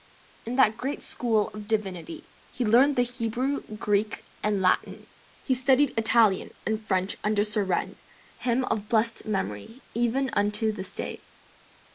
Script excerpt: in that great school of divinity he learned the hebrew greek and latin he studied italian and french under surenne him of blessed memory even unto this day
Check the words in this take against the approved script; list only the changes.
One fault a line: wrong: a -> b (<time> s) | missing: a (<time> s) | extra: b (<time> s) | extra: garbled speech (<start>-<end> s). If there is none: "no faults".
no faults